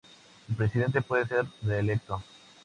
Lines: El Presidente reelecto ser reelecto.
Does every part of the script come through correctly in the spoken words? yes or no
no